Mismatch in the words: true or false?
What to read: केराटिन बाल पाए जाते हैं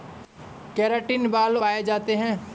false